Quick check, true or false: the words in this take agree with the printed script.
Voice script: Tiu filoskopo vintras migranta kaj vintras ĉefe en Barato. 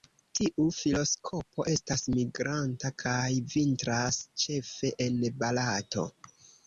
false